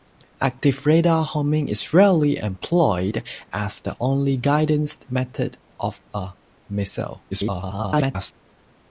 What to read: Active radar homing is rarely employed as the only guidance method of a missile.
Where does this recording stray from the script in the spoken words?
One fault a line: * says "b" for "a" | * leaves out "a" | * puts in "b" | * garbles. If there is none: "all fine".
* garbles